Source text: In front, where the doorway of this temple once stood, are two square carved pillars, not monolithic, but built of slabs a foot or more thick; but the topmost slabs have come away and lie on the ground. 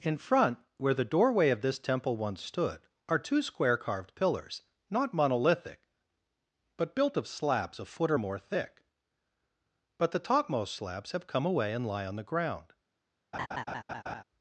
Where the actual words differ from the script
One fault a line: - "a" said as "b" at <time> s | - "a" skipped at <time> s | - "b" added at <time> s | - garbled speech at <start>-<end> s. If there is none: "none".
none